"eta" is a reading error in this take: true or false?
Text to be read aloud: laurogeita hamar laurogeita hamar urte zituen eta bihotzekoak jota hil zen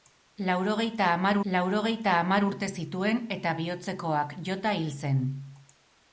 false